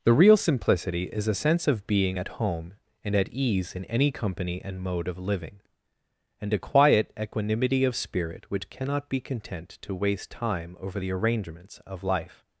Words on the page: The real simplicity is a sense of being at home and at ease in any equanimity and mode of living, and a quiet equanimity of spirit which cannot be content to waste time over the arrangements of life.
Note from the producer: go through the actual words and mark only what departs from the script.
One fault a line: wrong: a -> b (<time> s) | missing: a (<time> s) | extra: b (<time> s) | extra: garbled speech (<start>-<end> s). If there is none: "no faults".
wrong: equanimity -> company (4.1 s)